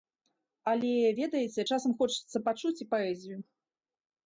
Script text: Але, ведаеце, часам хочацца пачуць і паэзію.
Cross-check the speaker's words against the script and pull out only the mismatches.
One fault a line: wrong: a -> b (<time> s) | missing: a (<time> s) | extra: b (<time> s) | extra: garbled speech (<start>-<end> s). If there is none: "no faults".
no faults